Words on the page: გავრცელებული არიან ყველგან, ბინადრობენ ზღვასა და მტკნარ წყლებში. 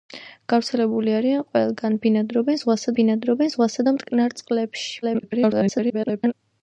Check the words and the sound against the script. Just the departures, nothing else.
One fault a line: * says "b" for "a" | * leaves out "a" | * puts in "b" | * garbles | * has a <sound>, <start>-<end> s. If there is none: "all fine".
* puts in "ბინადრობენ ზღვასა"
* garbles